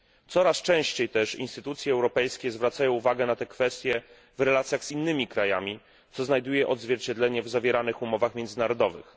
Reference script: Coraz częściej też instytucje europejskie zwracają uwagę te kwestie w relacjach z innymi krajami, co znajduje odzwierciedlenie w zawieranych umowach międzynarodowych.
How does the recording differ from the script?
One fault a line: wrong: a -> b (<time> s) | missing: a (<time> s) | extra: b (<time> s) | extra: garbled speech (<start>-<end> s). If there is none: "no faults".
extra: na (3.2 s)